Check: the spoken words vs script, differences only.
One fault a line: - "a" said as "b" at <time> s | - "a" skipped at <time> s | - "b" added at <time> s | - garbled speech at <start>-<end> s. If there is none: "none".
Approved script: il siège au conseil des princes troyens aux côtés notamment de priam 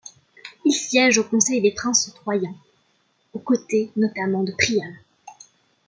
none